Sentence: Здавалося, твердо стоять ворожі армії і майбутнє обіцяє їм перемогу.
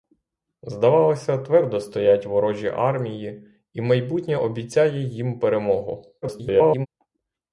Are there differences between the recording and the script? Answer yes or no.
yes